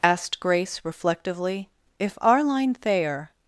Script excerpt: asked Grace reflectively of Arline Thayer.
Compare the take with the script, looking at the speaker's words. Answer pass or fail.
fail